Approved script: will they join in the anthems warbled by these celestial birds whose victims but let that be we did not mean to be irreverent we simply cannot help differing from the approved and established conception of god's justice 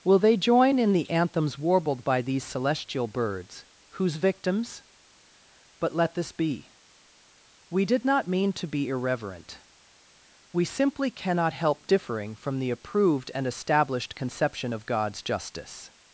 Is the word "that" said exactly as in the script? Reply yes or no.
no